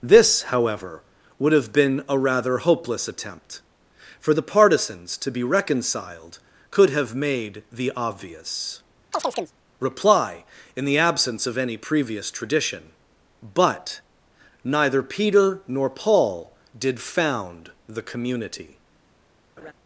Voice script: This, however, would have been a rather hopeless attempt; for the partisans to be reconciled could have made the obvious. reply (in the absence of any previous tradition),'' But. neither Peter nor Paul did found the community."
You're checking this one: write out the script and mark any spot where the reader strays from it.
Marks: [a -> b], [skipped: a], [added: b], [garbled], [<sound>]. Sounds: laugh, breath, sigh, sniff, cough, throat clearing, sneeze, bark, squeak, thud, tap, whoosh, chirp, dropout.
This, however, would have been a rather hopeless attempt; for the partisans to be reconciled could have made the obvious. [chirp] reply (in the absence of any previous tradition),'' But. neither Peter nor Paul did found the community." [laugh]